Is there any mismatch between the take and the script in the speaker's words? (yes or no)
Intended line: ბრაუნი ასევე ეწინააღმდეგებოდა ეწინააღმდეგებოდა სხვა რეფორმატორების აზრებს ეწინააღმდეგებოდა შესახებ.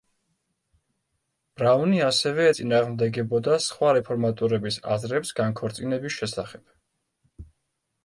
yes